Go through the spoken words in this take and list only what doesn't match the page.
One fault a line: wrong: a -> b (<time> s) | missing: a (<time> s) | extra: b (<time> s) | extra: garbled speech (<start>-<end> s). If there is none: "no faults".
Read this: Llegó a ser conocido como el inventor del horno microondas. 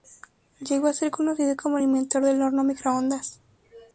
no faults